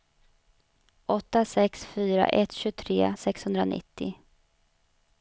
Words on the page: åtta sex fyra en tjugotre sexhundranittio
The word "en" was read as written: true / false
false